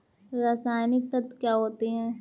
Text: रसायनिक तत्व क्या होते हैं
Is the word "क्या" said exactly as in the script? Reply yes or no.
yes